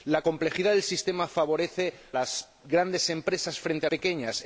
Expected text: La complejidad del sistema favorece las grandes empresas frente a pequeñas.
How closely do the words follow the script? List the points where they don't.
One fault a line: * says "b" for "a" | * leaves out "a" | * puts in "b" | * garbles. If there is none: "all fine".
all fine